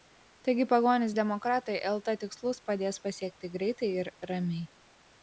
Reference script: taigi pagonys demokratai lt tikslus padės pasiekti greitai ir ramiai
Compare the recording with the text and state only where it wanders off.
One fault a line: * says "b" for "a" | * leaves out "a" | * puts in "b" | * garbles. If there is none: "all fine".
all fine